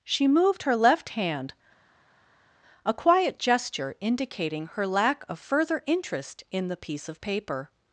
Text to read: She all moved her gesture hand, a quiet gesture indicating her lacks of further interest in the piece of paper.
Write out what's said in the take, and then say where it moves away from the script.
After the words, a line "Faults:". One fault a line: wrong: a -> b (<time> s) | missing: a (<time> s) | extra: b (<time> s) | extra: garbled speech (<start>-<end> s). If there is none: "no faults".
She moved her left hand, a quiet gesture indicating her lack of further interest in the piece of paper.
Faults:
missing: all (0.3 s)
wrong: gesture -> left (0.8 s)
wrong: lacks -> lack (4.9 s)